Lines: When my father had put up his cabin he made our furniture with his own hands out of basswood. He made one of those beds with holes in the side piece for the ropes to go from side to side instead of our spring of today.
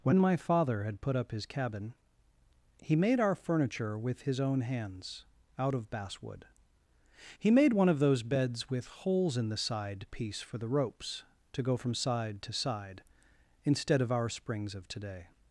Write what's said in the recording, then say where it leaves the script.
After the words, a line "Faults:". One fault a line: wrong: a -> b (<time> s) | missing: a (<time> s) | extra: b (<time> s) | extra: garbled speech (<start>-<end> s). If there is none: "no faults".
When my father had put up his cabin he made our furniture with his own hands out of basswood. He made one of those beds with holes in the side piece for the ropes to go from side to side instead of our springs of today.
Faults:
wrong: spring -> springs (14.3 s)